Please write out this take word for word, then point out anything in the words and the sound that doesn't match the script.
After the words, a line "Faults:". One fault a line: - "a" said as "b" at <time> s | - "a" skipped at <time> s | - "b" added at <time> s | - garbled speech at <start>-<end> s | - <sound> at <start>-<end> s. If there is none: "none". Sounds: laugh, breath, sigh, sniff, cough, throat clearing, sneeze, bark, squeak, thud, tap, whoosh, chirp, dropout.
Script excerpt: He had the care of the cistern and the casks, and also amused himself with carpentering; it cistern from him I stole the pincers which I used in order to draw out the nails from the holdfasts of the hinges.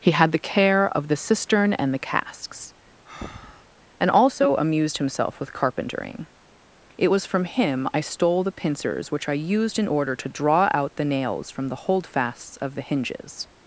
He had the care of the cistern and the casks, and also amused himself with carpentering; it was from him I stole the pincers which I used in order to draw out the nails from the holdfasts of the hinges.
Faults:
- breath at 3.0-3.7 s
- "cistern" said as "was" at 7.1 s